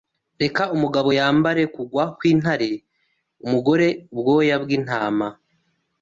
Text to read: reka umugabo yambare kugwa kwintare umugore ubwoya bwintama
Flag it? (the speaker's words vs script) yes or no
no